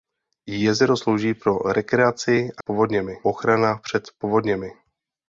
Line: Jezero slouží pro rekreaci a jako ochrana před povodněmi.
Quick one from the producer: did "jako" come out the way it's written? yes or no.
no